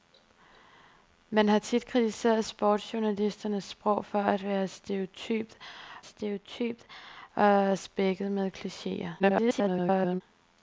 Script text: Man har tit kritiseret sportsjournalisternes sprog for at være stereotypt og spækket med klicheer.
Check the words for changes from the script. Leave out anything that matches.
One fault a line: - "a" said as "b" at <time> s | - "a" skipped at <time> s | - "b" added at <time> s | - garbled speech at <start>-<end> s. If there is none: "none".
- "stereotypt" added at 6.0 s
- garbled speech at 9.2-10.2 s